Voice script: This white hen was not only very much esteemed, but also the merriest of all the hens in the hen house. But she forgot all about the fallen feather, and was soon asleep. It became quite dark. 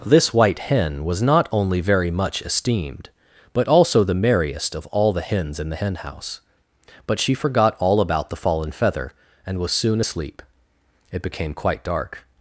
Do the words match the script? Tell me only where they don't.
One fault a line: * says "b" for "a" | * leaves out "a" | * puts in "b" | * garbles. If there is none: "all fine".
all fine